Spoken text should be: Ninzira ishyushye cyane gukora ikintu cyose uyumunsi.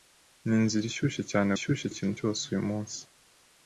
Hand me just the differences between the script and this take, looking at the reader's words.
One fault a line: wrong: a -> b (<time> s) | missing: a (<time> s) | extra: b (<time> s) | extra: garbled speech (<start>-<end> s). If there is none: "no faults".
wrong: gukora -> ishyushye (1.5 s)